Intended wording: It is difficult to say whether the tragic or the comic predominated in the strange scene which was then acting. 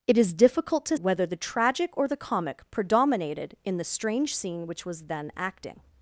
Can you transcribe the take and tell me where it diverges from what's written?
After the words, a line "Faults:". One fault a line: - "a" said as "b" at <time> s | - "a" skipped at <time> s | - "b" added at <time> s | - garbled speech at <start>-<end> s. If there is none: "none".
It is difficult to whether the tragic or the comic predominated in the strange scene which was then acting.
Faults:
- "say" skipped at 1.0 s